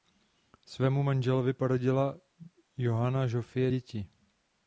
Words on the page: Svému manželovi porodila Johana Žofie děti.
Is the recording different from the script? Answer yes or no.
no